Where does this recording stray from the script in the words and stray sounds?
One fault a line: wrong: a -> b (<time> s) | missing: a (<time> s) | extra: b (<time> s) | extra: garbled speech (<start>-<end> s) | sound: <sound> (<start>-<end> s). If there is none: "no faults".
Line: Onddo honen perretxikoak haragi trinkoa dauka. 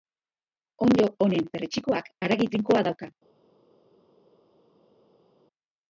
no faults